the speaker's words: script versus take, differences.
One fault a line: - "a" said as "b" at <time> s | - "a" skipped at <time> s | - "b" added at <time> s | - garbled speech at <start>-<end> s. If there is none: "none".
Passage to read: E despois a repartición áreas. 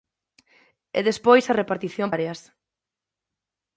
none